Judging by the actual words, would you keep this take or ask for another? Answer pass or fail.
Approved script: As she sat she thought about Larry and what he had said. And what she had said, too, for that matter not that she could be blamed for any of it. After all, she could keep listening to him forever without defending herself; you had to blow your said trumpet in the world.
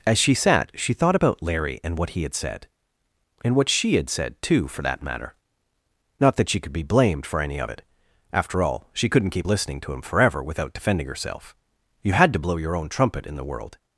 fail